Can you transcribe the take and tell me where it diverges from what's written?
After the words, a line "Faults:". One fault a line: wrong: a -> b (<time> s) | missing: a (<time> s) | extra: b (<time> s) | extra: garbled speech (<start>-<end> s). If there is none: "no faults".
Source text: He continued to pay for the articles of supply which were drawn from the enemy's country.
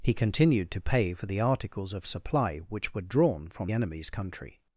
He continued to pay for the articles of supply which were drawn from enemy's country.
Faults:
missing: the (3.7 s)